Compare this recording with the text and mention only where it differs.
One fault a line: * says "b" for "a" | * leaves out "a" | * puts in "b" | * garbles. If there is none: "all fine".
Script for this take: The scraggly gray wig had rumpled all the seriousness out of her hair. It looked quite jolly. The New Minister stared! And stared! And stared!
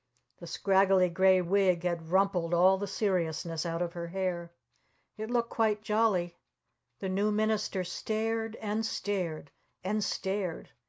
all fine